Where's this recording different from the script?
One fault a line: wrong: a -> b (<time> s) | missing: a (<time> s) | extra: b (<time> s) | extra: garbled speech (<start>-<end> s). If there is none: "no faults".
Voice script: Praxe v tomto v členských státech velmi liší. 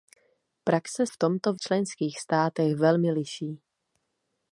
no faults